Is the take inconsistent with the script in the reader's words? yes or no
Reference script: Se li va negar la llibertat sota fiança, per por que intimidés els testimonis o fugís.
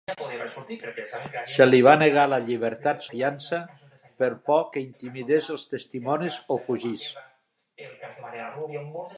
yes